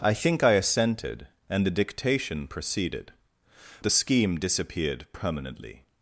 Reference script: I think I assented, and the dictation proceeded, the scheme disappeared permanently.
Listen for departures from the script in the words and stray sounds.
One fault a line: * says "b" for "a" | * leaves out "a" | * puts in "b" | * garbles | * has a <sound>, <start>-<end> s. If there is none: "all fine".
all fine